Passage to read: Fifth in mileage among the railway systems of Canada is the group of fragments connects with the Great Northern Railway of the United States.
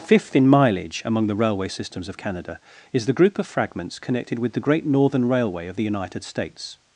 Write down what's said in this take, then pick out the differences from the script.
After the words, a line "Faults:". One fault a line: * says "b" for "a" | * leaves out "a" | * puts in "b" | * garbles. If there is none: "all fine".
Fifth in mileage among the railway systems of Canada is the group of fragments connected with the Great Northern Railway of the United States.
Faults:
* says "connected" for "connects"